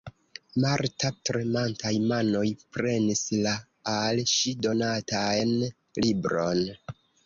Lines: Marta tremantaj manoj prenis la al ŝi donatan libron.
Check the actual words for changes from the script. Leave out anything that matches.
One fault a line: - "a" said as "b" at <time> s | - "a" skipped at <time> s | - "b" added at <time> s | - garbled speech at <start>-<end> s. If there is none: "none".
none